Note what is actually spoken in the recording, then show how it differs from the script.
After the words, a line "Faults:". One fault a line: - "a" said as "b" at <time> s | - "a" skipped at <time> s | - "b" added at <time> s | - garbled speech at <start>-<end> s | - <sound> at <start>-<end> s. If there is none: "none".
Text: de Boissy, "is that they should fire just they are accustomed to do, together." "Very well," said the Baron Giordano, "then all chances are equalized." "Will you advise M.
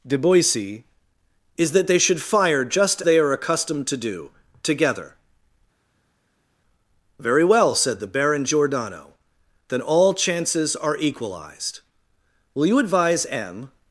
de Boissy, "is that they should fire just they are accustomed to do, together." "Very well," said the Baron Giordano, "then all chances are equalized." "Will you advise M.
Faults:
none